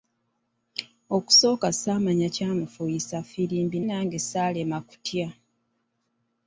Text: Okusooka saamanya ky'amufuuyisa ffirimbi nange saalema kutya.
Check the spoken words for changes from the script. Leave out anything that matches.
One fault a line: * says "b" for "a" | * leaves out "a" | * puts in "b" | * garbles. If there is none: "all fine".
all fine